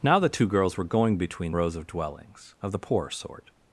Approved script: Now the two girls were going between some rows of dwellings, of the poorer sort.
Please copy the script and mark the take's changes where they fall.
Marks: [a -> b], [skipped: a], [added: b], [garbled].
Now the two girls were going between [skipped: some] rows of dwellings, of the poorer sort.